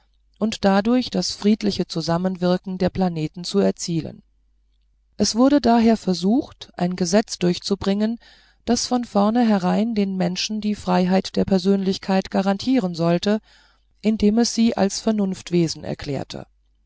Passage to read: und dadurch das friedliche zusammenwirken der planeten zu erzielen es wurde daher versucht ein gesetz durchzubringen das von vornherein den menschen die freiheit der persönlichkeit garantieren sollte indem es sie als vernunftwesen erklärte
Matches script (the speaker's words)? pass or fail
pass